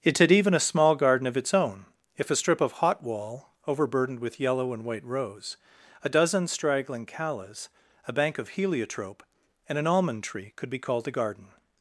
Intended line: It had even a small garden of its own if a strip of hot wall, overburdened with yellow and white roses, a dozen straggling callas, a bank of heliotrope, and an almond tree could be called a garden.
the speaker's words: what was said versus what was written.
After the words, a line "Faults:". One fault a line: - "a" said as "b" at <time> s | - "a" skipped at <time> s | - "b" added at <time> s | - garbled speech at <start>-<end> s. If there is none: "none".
It had even a small garden of its own if a strip of hot wall, overburdened with yellow and white rose, a dozen straggling callas, a bank of heliotrope, and an almond tree could be called a garden.
Faults:
- "roses" said as "rose" at 5.0 s